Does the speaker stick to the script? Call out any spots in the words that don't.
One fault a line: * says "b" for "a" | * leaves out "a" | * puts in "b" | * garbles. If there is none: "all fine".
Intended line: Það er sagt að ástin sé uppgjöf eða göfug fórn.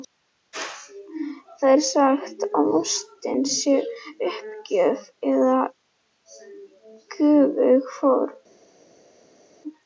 all fine